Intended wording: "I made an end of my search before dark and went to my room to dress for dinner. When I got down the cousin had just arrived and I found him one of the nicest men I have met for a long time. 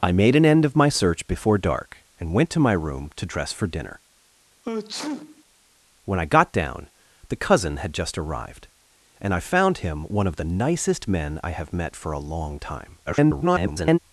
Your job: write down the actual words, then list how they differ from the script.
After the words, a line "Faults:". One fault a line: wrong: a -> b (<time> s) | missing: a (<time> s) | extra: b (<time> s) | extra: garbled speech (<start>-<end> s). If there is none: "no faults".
"I made an end of my search before dark and went to my room to dress for dinner. When I got down the cousin had just arrived and I found him one of the nicest men I have met for a long time. [garbled]
Faults:
extra: garbled speech (13.1-14.0 s)